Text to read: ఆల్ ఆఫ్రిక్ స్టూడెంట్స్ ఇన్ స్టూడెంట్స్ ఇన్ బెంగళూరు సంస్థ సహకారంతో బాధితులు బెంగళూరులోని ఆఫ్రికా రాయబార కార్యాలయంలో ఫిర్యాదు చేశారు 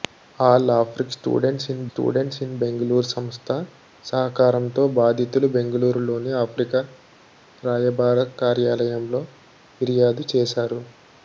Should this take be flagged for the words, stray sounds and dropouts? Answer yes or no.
no